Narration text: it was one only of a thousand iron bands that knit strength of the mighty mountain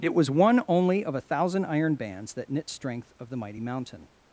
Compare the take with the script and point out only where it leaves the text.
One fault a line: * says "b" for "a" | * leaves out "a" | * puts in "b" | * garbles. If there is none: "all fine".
all fine